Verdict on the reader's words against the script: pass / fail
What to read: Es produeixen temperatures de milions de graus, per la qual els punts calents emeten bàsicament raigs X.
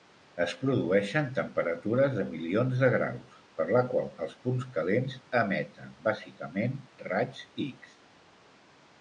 pass